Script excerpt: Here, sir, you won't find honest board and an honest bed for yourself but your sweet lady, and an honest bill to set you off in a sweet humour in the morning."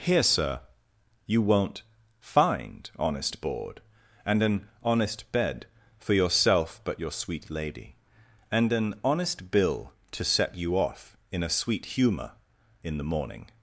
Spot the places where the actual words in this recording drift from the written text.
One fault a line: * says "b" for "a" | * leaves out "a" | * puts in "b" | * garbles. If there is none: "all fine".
all fine